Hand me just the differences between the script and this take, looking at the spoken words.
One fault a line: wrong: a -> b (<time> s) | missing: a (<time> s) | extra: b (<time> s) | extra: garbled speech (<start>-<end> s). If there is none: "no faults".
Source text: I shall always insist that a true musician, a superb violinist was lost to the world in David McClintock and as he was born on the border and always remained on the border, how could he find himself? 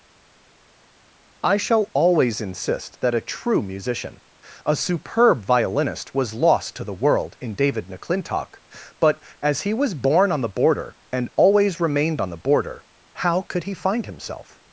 wrong: and -> but (9.0 s)